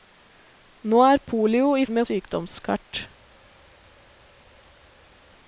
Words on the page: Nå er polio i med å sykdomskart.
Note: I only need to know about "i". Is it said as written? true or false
true